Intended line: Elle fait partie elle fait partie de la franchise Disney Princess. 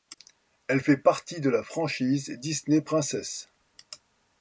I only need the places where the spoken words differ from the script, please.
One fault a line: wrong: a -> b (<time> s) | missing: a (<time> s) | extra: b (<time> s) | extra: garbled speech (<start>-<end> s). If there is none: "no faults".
missing: elle fait partie (1.4 s)